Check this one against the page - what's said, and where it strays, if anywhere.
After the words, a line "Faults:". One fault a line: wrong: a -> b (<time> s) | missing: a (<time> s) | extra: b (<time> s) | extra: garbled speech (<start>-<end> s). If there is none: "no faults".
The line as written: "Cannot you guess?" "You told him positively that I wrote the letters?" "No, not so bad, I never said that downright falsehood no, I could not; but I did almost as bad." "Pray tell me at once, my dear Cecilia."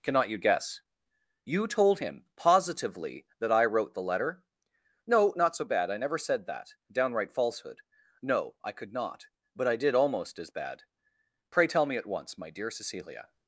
"Cannot you guess?" "You told him positively that I wrote the letter?" "No, not so bad, I never said that downright falsehood no, I could not; but I did almost as bad." "Pray tell me at once, my dear Cecilia."
Faults:
wrong: letters -> letter (4.0 s)